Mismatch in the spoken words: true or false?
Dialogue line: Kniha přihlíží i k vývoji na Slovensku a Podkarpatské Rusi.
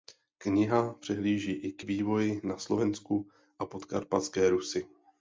false